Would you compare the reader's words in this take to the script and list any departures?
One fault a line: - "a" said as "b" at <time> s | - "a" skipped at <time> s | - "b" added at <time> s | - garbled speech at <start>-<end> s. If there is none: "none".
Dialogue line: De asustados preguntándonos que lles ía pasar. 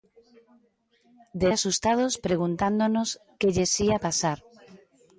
none